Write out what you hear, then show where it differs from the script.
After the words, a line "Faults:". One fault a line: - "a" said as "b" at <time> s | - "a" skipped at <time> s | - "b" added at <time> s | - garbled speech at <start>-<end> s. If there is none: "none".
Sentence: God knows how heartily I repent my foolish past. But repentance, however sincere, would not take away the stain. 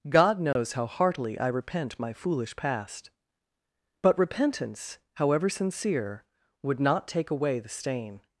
God knows how heartily I repent my foolish past. But repentance, however sincere, would not take away the stain.
Faults:
none